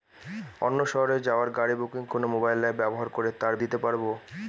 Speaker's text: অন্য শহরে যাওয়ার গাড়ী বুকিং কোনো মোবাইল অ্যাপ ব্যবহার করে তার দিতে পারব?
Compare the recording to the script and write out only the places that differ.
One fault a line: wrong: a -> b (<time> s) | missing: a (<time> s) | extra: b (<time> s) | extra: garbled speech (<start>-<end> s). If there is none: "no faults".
no faults